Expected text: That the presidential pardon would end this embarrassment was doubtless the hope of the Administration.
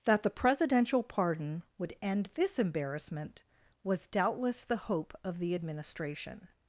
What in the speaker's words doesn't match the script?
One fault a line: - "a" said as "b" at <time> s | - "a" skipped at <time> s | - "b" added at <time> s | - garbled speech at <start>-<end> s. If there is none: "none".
none